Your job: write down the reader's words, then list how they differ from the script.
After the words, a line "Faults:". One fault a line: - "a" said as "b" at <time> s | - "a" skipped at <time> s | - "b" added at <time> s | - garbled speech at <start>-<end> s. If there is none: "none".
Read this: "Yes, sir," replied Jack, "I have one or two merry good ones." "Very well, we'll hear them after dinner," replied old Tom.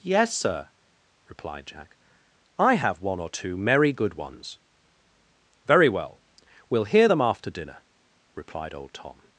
"Yes, sir," replied Jack, "I have one or two merry good ones." "Very well, we'll hear them after dinner," replied old Tom.
Faults:
none